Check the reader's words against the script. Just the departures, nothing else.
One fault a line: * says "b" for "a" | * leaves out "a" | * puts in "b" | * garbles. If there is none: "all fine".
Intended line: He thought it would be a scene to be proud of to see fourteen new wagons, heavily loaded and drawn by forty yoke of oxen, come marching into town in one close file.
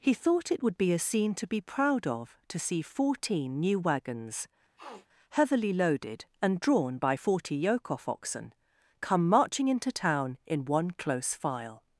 * says "off" for "of"